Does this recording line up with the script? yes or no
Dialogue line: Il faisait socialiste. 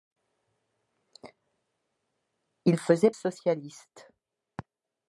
yes